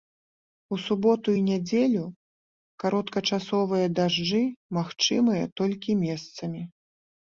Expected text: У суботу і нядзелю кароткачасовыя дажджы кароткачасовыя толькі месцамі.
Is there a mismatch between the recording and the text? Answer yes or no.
yes